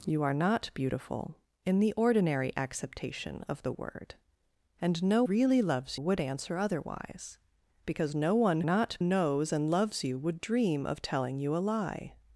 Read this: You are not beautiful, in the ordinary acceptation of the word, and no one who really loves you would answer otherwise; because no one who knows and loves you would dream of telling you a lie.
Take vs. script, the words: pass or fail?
fail